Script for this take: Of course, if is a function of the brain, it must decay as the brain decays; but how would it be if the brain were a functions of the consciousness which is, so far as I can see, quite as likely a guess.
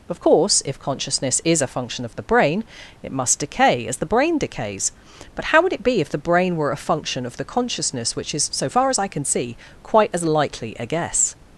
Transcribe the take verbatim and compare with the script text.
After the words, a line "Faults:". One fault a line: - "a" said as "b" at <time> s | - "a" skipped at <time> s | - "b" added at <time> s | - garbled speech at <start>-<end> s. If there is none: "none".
Of course, if consciousness is a function of the brain, it must decay as the brain decays; but how would it be if the brain were a function of the consciousness which is, so far as I can see, quite as likely a guess.
Faults:
- "consciousness" added at 0.8 s
- "functions" said as "function" at 6.8 s